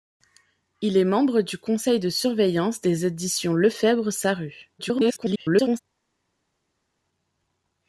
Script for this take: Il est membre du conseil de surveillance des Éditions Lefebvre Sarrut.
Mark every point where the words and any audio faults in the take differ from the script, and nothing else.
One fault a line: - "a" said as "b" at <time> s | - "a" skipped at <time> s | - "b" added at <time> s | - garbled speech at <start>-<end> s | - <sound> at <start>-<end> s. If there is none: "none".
- garbled speech at 4.8-5.8 s